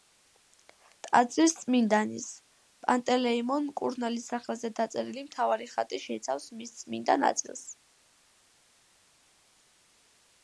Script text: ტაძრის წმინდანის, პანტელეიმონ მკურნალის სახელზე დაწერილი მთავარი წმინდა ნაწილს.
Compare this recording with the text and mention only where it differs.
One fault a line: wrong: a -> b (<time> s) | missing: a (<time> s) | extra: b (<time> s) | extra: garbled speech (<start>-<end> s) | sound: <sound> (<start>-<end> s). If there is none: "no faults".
extra: ხატი შეიცავს მის (5.8 s)